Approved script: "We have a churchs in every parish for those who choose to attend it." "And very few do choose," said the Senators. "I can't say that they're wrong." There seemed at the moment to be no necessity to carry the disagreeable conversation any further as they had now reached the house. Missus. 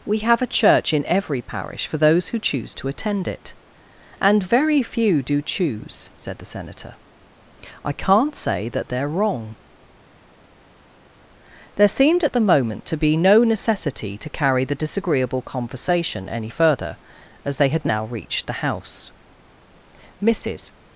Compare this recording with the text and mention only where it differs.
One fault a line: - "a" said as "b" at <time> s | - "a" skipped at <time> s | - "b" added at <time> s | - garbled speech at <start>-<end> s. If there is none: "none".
- "churchs" said as "church" at 0.5 s
- "Senators" said as "Senator" at 6.5 s